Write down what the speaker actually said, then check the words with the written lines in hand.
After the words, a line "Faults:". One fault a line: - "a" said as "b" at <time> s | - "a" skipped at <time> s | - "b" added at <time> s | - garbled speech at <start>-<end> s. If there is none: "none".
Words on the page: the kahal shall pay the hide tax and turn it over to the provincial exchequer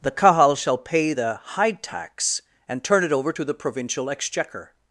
the kahal shall pay the hide tax and turn it over to the provincial exchequer
Faults:
none